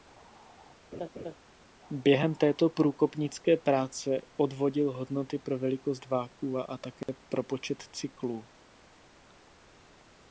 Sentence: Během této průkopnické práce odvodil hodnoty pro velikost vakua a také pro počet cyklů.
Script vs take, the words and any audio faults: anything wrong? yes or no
yes